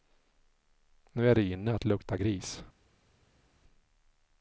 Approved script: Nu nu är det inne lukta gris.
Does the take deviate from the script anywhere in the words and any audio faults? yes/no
yes